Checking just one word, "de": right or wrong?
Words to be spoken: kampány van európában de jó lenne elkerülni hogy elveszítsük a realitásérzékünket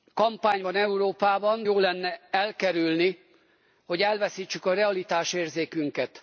wrong